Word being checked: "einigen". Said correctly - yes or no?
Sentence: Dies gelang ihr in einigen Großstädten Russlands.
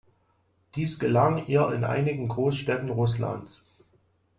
yes